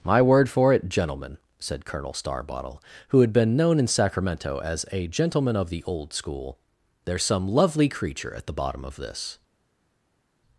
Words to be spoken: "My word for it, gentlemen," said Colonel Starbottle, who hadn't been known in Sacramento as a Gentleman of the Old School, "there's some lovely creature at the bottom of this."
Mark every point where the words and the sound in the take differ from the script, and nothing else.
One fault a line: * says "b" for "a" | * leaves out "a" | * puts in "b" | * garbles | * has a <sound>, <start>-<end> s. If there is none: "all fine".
* says "had" for "hadn't"